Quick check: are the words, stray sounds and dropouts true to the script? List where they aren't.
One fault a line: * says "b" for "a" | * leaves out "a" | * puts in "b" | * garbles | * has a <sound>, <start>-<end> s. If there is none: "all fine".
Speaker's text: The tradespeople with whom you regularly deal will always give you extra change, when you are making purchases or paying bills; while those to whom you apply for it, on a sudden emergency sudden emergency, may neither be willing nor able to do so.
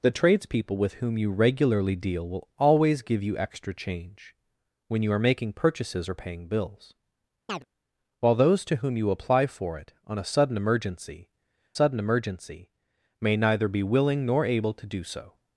* has a chirp, 7.5-7.6 s